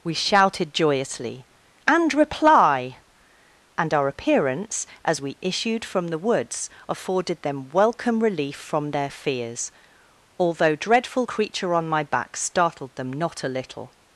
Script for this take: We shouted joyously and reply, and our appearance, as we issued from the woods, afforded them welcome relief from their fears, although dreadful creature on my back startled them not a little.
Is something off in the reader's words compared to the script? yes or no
no